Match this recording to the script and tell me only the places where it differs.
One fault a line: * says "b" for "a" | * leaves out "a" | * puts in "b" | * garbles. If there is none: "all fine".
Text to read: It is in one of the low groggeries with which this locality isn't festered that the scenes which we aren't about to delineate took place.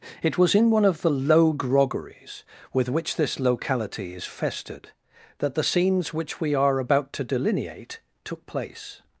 * says "was" for "is"
* says "is" for "isn't"
* says "are" for "aren't"